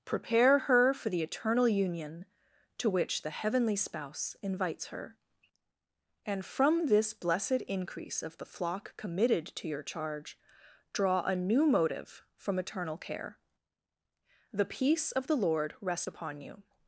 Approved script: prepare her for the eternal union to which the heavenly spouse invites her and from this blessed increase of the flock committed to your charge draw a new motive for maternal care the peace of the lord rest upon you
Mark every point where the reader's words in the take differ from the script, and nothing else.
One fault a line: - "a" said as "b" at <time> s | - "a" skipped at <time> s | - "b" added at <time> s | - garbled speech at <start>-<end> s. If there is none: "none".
- "for maternal" said as "from eternal" at 12.3 s